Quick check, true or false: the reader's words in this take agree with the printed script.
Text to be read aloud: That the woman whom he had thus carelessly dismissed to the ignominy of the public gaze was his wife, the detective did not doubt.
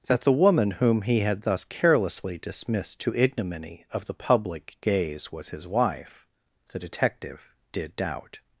false